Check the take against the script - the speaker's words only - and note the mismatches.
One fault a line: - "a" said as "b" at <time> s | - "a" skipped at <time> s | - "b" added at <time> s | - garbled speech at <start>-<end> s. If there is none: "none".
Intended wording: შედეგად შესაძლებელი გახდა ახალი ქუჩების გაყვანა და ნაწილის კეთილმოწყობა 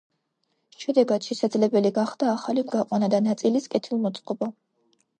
- "ქუჩების" skipped at 2.7 s